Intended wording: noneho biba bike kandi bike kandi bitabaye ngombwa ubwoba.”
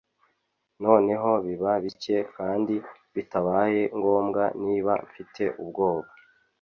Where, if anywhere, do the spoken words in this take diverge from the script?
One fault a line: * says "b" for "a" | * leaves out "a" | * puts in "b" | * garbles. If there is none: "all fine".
* says "bitabaye ngombwa niba mfite" for "bike kandi bitabaye ngombwa"